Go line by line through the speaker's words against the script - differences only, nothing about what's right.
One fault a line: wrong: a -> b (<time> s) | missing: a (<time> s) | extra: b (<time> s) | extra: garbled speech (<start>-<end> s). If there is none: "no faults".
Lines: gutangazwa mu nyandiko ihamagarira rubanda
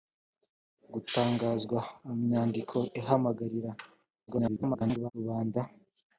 extra: garbled speech (4.3-5.1 s)